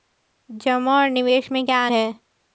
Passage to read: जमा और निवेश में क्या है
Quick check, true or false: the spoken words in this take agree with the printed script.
true